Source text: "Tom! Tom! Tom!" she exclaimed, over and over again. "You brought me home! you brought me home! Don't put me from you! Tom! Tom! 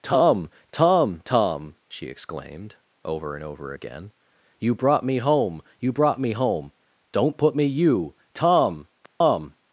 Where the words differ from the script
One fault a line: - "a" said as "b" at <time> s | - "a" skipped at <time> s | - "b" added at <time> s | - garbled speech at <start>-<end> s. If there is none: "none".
- "from" skipped at 7.6 s